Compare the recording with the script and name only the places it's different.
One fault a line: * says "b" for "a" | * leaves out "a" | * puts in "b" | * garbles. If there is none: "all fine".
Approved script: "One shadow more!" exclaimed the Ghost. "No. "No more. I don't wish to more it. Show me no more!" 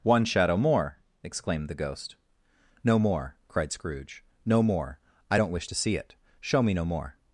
* puts in "more cried Scrooge"
* says "see" for "more"